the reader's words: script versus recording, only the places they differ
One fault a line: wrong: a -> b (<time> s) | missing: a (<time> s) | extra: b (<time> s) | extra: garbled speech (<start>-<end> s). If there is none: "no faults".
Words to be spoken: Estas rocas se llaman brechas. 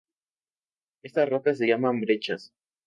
no faults